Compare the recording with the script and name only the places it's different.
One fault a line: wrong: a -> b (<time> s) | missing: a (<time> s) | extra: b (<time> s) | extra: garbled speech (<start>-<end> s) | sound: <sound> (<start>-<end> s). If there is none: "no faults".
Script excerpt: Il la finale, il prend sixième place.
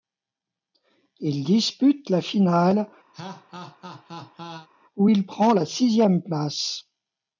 extra: dispute (1.4 s)
sound: laugh (3.1-4.7 s)
extra: où (4.9 s)
extra: la (5.5 s)